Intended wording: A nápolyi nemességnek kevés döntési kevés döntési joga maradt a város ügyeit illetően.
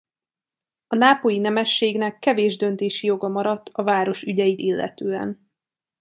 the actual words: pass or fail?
fail